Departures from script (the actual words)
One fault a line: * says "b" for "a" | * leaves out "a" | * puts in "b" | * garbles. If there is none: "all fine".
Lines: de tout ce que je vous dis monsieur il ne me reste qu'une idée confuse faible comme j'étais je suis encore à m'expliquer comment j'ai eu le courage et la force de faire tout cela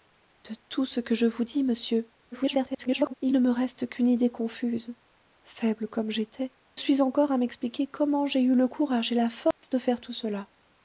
* garbles
* leaves out "je"